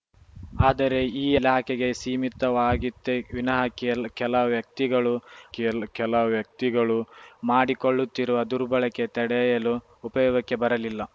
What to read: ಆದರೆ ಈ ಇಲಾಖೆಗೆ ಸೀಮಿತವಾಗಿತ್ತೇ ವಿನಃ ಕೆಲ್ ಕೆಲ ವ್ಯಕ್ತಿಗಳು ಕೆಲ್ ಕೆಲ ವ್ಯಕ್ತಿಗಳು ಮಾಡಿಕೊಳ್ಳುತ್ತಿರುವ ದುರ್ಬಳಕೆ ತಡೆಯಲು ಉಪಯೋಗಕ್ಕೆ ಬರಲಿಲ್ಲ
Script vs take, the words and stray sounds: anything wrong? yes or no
no